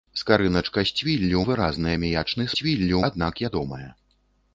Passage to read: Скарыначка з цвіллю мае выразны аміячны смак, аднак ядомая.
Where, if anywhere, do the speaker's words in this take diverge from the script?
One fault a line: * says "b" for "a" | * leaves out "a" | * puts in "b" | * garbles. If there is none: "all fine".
* leaves out "мае"
* says "цвіллю" for "смак"